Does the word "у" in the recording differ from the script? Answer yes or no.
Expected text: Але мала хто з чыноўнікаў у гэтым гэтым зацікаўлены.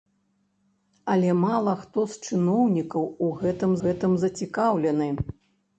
no